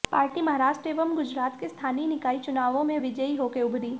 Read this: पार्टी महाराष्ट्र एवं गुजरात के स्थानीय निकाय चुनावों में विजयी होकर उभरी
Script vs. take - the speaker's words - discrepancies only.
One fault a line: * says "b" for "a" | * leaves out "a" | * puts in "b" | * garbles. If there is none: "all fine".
all fine